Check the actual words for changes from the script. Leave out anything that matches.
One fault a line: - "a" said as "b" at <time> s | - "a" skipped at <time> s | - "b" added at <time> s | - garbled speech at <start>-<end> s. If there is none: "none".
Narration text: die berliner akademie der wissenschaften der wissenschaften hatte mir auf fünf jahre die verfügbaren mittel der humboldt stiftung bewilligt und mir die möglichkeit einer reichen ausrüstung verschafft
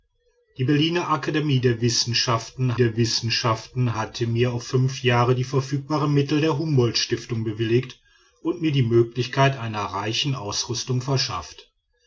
none